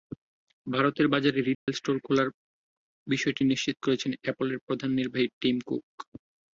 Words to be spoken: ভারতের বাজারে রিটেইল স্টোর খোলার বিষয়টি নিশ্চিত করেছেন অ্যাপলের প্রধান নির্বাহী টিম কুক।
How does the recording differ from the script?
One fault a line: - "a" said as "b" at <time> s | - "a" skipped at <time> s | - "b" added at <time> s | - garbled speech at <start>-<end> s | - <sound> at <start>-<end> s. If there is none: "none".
- dropout at 1.5-1.7 s